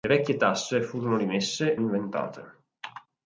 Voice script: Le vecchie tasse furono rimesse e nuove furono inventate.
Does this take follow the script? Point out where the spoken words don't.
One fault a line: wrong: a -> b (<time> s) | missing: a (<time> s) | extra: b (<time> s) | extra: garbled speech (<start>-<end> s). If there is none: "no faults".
missing: e nuove furono (1.7 s)